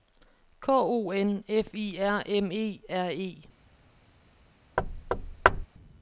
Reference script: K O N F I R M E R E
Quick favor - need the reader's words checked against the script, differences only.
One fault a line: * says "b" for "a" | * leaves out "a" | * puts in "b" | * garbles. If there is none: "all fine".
all fine